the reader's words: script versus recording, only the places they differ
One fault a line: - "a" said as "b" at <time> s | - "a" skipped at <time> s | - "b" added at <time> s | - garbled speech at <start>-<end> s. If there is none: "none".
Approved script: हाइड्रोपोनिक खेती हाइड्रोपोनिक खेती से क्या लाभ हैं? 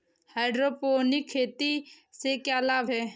- "हाइड्रोपोनिक खेती" skipped at 1.7 s